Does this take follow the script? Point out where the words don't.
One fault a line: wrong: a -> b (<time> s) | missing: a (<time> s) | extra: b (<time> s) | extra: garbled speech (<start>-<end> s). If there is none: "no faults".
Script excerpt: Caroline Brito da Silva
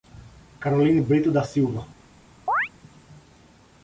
no faults